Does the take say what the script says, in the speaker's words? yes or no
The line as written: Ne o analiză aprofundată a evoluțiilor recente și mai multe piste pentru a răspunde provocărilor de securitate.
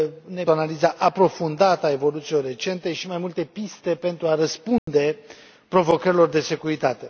yes